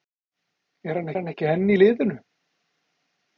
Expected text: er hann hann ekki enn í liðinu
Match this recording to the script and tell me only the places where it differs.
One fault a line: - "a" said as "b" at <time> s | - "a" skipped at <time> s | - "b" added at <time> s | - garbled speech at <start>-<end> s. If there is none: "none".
none